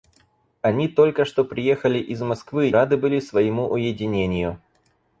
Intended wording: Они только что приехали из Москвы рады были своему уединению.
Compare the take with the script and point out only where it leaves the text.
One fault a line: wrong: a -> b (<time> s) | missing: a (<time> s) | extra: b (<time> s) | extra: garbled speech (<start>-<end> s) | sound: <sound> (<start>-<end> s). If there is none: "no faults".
no faults